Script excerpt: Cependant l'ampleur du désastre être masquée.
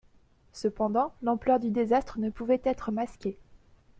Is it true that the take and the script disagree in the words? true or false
true